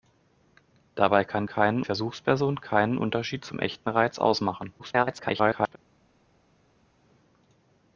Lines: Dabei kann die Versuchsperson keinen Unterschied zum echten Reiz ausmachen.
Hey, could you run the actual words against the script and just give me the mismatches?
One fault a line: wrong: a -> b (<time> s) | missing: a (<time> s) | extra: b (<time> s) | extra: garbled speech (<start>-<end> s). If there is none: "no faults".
wrong: die -> keinen (1.4 s)
extra: garbled speech (4.8-5.8 s)